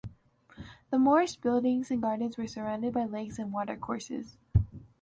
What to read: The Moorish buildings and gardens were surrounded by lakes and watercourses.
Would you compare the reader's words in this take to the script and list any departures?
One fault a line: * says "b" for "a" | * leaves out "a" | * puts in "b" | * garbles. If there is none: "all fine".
all fine